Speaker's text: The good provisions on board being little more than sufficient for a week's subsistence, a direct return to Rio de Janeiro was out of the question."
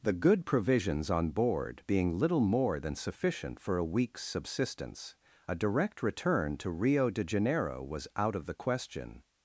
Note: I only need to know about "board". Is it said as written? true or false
true